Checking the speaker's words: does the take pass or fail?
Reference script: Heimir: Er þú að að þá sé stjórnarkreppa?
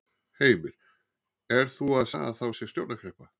pass